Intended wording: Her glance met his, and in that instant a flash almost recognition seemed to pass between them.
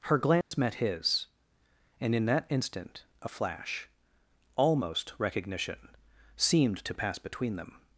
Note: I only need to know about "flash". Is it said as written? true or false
true